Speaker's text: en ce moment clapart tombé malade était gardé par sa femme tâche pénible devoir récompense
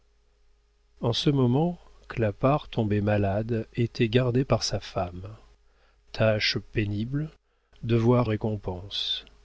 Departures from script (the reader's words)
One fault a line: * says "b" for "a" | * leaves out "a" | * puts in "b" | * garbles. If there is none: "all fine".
all fine